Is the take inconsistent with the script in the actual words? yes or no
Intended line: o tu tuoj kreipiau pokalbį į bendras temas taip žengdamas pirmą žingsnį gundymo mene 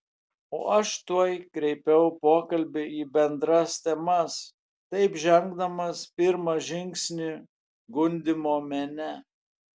yes